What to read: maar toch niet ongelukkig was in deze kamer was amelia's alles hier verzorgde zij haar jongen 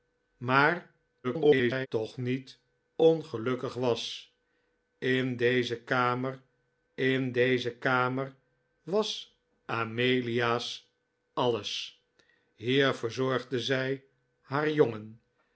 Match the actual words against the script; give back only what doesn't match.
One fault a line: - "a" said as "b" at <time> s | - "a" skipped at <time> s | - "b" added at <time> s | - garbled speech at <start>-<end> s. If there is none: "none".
- garbled speech at 1.2-1.9 s
- "in deze kamer" added at 6.9 s